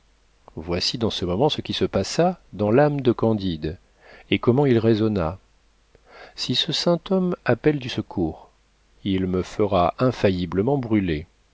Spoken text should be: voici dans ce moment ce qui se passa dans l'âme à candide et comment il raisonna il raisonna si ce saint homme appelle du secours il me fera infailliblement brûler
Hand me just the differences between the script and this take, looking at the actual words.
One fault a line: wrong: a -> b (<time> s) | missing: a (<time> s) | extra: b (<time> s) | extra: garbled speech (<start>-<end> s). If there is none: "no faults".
wrong: à -> de (3.0 s)
missing: il raisonna (5.4 s)